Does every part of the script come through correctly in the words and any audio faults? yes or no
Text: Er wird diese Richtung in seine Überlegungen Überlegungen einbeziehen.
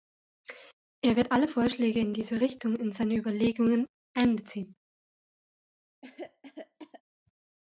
no